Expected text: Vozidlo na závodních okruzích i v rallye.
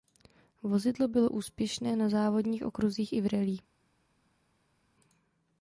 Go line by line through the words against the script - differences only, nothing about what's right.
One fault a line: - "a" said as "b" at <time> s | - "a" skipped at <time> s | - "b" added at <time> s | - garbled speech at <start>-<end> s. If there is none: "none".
- "bylo úspěšné" added at 1.1 s